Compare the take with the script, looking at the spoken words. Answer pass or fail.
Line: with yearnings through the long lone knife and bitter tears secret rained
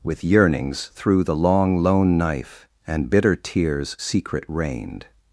pass